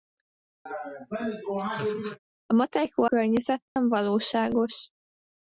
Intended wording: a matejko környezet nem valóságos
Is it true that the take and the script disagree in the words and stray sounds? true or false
true